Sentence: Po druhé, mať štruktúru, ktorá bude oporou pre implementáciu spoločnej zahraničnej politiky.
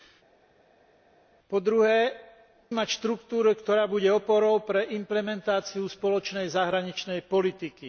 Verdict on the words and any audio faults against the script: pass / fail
pass